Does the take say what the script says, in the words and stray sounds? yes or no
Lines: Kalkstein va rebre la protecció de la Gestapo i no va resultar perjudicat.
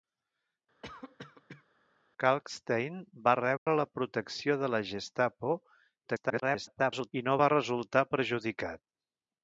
no